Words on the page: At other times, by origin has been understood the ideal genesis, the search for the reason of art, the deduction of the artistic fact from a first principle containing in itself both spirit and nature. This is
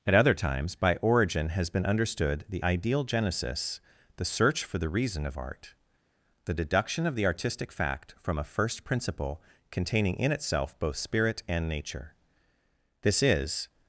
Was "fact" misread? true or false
false